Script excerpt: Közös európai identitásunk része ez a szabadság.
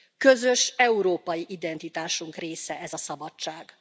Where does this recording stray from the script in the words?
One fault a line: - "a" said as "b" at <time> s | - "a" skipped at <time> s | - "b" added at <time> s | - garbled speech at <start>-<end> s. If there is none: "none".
none